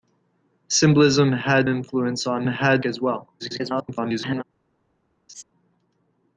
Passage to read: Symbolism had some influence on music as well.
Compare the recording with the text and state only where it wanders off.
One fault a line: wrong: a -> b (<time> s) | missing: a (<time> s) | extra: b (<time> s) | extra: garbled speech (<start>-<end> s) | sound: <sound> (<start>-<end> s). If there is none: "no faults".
missing: some (1.7 s)
wrong: music -> had (2.5 s)
extra: garbled speech (3.4-4.4 s)
sound: laugh (5.3-5.4 s)